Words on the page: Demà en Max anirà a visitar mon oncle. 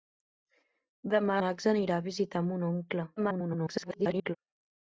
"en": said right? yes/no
no